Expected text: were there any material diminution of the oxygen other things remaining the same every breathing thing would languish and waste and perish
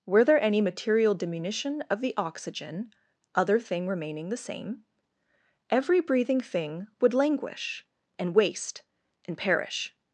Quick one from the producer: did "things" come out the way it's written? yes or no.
no